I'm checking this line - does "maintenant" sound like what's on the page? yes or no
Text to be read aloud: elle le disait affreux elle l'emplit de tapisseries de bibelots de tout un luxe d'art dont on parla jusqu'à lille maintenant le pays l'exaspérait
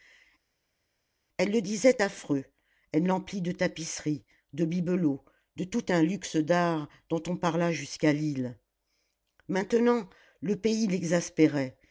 yes